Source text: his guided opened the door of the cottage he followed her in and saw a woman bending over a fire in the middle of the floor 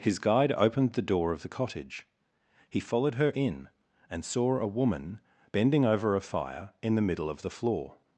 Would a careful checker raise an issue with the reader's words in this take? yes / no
yes